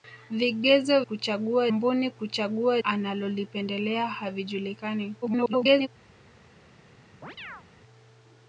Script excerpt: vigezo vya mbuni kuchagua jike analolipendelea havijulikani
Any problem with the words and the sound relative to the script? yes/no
yes